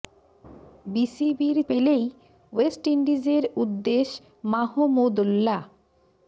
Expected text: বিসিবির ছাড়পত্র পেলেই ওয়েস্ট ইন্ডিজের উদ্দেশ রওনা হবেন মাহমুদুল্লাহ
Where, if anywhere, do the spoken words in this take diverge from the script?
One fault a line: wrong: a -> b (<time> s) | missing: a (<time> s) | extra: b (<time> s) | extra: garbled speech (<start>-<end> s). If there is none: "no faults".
missing: ছাড়পত্র (1.6 s)
missing: রওনা হবেন (4.1 s)